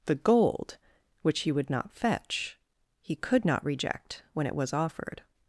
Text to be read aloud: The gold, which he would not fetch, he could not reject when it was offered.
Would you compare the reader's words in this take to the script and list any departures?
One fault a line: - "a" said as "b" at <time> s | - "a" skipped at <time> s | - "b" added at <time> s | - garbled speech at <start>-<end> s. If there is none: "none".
none